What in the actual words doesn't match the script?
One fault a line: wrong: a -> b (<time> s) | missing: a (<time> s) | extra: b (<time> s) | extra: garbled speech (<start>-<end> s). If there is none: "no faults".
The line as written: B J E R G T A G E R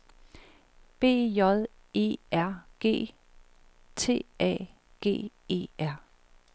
no faults